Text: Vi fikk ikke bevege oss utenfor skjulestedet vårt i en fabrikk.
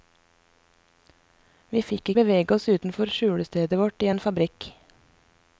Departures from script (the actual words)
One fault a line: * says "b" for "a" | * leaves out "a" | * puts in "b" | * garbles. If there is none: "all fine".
* leaves out "ikke"